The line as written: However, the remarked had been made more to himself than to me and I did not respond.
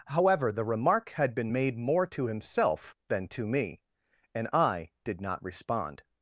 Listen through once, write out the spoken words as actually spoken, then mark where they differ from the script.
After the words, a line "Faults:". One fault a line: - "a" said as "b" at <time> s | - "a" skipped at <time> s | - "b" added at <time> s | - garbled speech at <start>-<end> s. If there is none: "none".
However, the remark had been made more to himself than to me and I did not respond.
Faults:
- "remarked" said as "remark" at 0.7 s